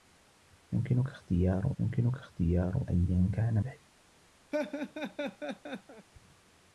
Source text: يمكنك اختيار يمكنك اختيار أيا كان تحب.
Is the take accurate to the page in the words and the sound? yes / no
no